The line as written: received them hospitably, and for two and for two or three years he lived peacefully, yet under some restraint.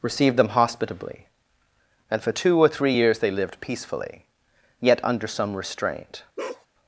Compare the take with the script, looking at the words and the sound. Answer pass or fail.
fail